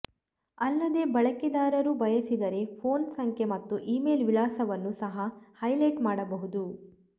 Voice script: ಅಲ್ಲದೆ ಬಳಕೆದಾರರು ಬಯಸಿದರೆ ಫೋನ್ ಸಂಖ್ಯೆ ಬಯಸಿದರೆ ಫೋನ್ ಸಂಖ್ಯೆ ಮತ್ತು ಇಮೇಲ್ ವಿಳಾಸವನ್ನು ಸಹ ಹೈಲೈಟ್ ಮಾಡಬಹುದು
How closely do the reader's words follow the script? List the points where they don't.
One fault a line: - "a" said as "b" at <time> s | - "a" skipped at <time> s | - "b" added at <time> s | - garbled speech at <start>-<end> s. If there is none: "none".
- "ಬಯಸಿದರೆ ಫೋನ್ ಸಂಖ್ಯೆ" skipped at 3.5 s